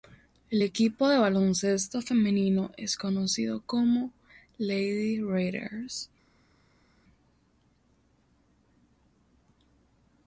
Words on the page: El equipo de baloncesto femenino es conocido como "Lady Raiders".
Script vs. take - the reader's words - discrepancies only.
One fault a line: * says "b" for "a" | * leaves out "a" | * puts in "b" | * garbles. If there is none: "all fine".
all fine